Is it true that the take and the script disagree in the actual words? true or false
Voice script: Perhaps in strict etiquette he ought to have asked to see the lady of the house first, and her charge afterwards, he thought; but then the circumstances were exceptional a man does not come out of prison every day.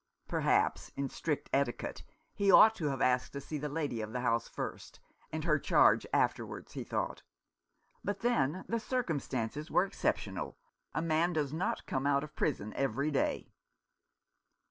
false